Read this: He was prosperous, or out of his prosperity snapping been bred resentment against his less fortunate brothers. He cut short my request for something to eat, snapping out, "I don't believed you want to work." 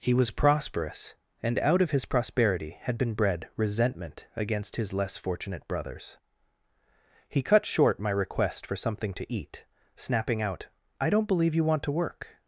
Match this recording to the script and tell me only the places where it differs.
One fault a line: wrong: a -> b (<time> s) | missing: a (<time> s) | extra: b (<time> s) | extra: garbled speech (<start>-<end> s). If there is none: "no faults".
wrong: or -> and (1.4 s)
wrong: snapping -> had (2.8 s)
wrong: believed -> believe (11.3 s)